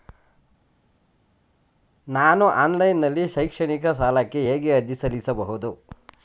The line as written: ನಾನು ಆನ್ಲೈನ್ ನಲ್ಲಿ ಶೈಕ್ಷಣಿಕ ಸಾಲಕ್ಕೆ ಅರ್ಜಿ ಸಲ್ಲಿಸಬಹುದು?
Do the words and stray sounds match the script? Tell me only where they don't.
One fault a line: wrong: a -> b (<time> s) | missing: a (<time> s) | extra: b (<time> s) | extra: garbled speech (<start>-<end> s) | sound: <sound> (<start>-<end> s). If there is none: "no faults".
extra: ಹೇಗೆ (4.4 s)